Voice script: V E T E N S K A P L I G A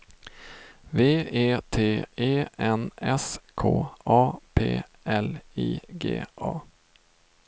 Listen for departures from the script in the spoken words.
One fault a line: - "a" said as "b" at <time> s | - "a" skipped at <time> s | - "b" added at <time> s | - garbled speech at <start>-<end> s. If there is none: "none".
none